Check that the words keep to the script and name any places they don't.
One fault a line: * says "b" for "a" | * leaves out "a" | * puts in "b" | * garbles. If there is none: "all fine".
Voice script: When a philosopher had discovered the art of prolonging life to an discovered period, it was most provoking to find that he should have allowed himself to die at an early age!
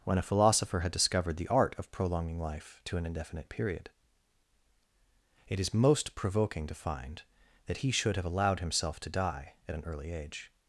* says "indefinite" for "discovered"
* says "is" for "was"